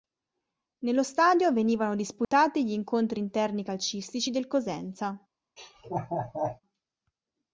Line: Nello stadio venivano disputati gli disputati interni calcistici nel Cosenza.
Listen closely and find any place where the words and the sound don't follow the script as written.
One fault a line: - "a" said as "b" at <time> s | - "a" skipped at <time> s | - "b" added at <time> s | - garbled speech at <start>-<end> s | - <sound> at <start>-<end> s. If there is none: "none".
- dropout at 2.2-2.3 s
- "disputati" said as "incontri" at 2.7 s
- "nel" said as "del" at 4.3 s
- laugh at 5.6-6.6 s